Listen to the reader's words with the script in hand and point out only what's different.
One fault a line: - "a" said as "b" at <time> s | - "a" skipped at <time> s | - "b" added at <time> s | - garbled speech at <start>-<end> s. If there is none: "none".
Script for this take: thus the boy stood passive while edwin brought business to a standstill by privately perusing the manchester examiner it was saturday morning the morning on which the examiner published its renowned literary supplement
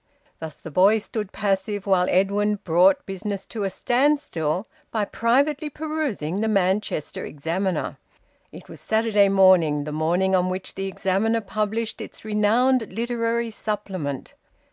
none